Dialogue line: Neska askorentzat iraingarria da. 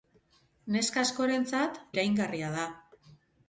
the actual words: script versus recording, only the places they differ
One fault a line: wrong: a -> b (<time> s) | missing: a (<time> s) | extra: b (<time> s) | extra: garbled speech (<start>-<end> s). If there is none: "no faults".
no faults